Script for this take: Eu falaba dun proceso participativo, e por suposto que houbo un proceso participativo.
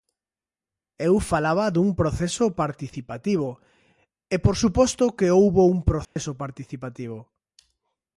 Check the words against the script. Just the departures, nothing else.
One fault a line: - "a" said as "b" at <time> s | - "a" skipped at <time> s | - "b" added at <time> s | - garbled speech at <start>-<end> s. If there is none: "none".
none